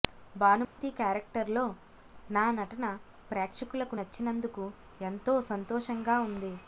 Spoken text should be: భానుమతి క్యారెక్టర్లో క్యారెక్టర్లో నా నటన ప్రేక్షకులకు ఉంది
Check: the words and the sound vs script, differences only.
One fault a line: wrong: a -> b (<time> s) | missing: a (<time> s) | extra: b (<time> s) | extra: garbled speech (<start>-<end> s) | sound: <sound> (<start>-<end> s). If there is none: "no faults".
sound: dropout (0.6-0.8 s)
missing: క్యారెక్టర్లో (1.6 s)
extra: నచ్చినందుకు ఎంతో సంతోషంగా (4.0 s)